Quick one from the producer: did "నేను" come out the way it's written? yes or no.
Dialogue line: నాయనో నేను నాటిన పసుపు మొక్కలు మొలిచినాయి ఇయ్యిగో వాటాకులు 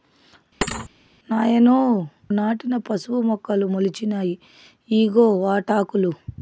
no